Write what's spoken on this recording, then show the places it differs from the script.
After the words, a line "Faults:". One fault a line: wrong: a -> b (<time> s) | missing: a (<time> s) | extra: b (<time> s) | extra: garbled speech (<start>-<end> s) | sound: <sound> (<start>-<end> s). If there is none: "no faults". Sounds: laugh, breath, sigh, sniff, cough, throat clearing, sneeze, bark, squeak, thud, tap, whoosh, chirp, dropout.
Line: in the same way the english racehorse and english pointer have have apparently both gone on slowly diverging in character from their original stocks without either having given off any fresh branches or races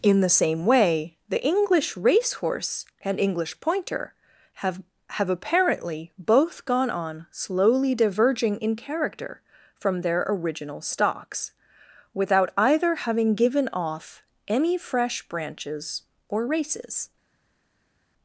in the same way the english racehorse and english pointer have have apparently both gone on slowly diverging in character from their original stocks without either having given off any fresh branches or races
Faults:
no faults